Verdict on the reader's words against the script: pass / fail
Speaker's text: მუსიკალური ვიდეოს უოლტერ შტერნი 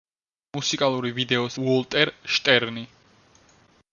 pass